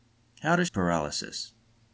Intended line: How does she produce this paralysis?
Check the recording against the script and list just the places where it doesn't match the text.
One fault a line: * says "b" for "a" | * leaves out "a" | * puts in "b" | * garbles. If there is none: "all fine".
* leaves out "she produce this"